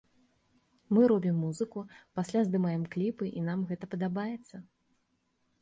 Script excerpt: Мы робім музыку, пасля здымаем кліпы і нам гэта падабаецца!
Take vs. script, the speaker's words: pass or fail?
pass